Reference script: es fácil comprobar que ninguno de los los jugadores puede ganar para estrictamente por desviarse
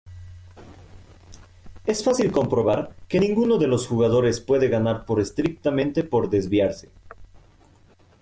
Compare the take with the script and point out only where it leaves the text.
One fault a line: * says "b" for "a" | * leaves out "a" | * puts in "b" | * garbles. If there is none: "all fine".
* leaves out "los"
* says "por" for "para"